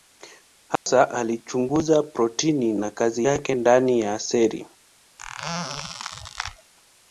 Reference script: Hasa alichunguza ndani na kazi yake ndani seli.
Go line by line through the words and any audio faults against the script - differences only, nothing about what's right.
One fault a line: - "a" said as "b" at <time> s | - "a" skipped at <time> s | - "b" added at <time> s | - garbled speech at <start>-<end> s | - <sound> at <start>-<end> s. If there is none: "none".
- dropout at 0.8-0.9 s
- "ndani" said as "protini" at 2.0 s
- "ya" added at 4.0 s
- squeak at 5.2-6.7 s